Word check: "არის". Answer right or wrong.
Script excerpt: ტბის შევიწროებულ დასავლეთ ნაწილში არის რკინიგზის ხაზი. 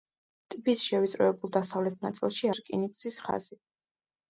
wrong